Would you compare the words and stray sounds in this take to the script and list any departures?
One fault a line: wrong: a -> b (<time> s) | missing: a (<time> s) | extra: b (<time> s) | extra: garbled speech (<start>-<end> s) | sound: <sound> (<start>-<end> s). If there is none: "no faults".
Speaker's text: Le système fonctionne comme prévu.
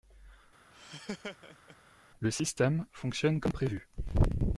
sound: laugh (0.7-1.8 s)